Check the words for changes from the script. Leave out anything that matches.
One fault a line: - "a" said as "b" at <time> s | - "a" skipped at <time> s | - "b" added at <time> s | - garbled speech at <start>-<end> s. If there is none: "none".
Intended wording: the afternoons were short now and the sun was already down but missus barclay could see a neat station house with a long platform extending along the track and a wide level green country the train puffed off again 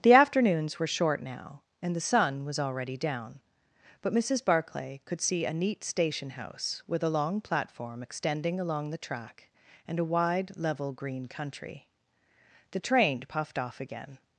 none